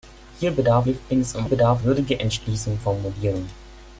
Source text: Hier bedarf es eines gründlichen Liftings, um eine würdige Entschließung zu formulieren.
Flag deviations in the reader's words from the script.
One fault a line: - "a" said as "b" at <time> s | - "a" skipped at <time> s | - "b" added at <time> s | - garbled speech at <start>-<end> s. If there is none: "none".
- "es eines gründlichen" skipped at 0.9 s
- "eine" said as "bedarf" at 1.4 s
- "zu" skipped at 2.8 s